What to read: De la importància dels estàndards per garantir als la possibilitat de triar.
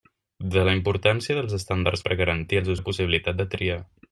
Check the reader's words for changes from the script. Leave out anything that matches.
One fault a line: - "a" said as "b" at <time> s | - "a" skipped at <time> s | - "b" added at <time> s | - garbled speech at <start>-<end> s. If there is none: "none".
none